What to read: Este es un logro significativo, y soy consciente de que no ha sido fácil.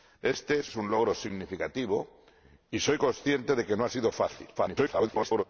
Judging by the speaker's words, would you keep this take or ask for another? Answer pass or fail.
fail